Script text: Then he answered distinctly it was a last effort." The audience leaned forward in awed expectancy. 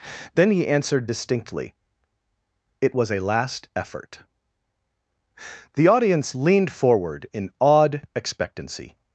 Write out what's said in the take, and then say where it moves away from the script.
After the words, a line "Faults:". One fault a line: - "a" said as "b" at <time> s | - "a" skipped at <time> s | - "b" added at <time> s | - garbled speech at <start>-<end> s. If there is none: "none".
Then he answered distinctly it was a last effort." The audience leaned forward in awed expectancy.
Faults:
none